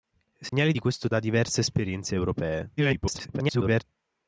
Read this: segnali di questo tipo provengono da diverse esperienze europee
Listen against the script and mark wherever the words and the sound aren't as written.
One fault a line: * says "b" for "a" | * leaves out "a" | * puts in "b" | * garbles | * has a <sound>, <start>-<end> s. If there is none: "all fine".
* has a dropout, 0.5-0.5 s
* leaves out "tipo provengono"
* garbles